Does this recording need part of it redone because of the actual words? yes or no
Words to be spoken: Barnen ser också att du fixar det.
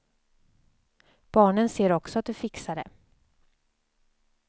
no